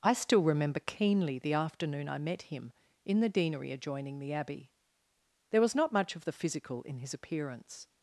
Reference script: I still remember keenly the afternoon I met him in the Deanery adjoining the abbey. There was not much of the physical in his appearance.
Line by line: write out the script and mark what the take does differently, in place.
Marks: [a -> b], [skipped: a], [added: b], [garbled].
I still remember keenly the afternoon I met him in the Deanery adjoining the abbey. There was not much of the physical in his appearance.